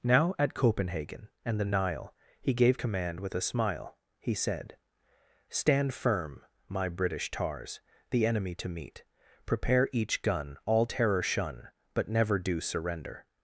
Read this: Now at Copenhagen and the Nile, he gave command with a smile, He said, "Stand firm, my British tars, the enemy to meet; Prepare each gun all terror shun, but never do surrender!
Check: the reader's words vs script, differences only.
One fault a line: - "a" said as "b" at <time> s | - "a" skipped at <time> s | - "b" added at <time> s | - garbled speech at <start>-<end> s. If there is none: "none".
none